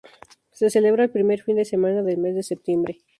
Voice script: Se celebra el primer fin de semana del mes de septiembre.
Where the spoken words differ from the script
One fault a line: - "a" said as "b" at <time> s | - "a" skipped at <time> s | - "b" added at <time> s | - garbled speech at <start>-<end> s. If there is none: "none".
none